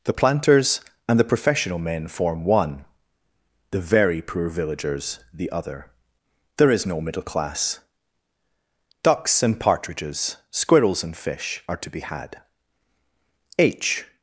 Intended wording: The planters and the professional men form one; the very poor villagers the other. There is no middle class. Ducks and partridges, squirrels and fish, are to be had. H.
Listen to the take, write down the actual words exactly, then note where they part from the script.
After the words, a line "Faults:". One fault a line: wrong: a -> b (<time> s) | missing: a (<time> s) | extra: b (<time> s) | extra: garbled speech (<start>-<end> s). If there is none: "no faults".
The planters and the professional men form one; the very poor villagers the other. There is no middle class. Ducks and partridges, squirrels and fish, are to be had. H.
Faults:
no faults